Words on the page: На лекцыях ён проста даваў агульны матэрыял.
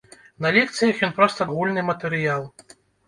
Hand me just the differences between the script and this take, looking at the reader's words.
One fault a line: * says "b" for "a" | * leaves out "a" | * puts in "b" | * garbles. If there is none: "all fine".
* leaves out "даваў"